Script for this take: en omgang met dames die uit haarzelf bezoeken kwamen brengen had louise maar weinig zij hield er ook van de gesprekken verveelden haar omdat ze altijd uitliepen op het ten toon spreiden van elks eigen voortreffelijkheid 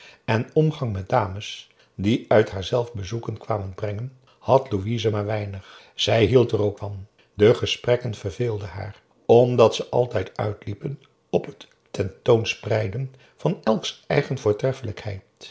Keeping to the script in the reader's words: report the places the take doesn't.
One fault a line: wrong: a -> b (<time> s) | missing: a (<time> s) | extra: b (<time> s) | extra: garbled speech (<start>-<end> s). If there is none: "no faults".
no faults